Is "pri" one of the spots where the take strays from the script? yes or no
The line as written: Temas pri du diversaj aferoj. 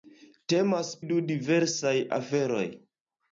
yes